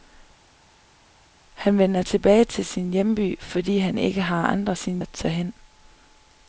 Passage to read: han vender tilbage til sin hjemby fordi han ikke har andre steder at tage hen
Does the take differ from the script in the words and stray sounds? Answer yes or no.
yes